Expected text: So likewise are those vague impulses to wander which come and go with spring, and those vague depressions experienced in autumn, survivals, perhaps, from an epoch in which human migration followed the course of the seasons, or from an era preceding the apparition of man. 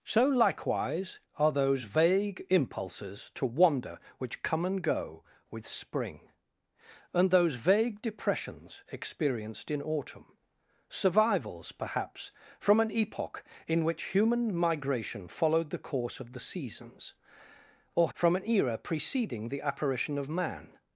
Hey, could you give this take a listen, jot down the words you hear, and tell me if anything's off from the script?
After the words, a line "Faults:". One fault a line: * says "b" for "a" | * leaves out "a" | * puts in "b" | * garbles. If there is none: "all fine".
So likewise are those vague impulses to wander which come and go with spring, and those vague depressions experienced in autumn, survivals, perhaps, from an epoch in which human migration followed the course of the seasons, or from an era preceding the apparition of man.
Faults:
all fine